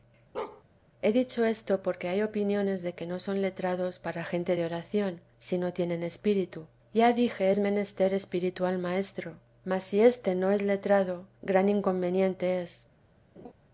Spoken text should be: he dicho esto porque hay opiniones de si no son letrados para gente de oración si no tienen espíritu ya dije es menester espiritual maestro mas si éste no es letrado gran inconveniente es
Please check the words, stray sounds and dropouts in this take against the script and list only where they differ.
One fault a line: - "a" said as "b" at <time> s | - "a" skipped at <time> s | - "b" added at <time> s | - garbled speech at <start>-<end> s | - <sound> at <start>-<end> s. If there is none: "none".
- bark at 0.3-0.6 s
- "si" said as "que" at 2.9 s
- laugh at 13.4-13.5 s